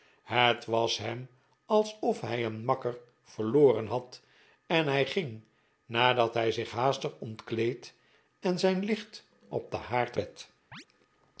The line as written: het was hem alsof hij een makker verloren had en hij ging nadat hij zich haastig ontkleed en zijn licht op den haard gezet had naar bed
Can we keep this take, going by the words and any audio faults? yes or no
no